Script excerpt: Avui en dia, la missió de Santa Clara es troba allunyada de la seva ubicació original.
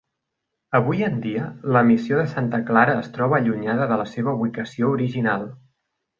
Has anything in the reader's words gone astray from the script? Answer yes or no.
no